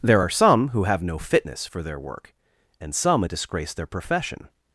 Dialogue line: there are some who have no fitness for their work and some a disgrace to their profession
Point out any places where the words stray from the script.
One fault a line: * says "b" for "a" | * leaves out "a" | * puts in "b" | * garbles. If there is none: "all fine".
* leaves out "to"